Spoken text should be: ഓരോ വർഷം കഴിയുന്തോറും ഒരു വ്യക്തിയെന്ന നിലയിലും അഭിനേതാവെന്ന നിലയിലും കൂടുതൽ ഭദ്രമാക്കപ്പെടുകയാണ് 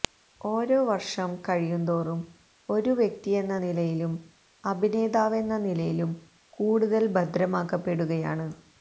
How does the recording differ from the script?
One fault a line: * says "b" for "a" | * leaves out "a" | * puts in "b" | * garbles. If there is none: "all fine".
all fine